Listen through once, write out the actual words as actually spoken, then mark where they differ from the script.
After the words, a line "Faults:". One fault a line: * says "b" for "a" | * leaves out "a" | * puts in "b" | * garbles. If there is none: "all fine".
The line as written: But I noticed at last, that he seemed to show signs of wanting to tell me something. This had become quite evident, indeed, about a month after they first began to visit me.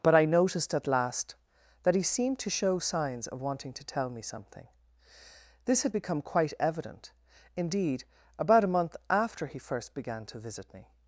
But I noticed at last, that he seemed to show signs of wanting to tell me something. This had become quite evident, indeed, about a month after he first began to visit me.
Faults:
* says "he" for "they"